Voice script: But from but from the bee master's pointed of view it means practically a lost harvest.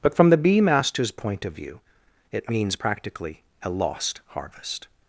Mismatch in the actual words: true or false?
true